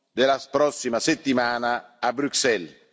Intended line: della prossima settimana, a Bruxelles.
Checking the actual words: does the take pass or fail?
pass